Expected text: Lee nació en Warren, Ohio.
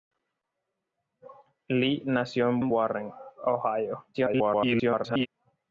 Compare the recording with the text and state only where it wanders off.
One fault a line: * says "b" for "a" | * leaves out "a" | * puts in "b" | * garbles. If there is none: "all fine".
* puts in "en"
* garbles